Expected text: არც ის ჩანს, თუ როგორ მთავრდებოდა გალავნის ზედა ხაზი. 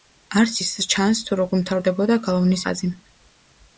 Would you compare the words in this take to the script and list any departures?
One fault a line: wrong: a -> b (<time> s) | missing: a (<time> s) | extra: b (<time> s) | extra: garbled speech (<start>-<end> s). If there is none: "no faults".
missing: ზედა (2.6 s)